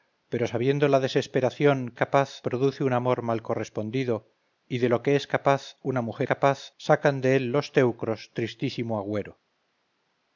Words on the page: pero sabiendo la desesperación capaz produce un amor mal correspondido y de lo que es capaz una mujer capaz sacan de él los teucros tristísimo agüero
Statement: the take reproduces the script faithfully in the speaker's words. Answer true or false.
true